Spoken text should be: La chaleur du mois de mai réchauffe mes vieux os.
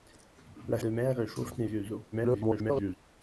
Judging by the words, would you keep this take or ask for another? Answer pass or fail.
fail